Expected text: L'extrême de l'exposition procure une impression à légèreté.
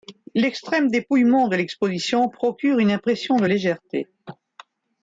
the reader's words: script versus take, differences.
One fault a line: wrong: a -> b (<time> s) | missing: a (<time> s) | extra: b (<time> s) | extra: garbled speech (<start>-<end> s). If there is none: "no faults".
extra: dépouillement (0.9 s)
wrong: à -> de (3.4 s)